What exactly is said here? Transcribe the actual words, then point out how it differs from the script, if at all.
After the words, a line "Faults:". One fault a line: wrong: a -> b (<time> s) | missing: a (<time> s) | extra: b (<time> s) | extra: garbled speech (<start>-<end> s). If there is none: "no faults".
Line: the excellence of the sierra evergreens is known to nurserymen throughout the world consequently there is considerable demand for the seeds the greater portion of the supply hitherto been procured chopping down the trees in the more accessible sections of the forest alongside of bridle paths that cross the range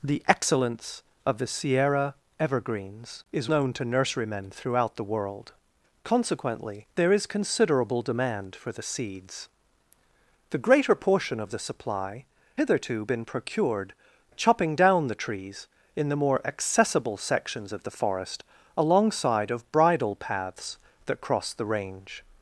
the excellence of the sierra evergreens is known to nurserymen throughout the world consequently there is considerable demand for the seeds the greater portion of the supply hitherto been procured chopping down the trees in the more accessible sections of the forest alongside of bridle paths that cross the range
Faults:
no faults